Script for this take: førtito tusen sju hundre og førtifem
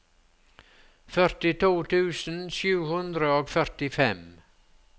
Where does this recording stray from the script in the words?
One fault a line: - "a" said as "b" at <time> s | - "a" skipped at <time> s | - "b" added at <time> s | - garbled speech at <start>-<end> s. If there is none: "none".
none